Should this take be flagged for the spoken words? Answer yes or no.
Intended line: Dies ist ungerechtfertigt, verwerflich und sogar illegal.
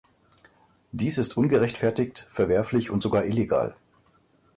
no